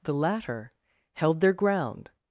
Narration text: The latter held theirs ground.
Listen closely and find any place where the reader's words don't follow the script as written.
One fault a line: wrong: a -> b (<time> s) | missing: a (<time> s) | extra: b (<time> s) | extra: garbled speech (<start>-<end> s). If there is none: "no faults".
wrong: theirs -> their (1.4 s)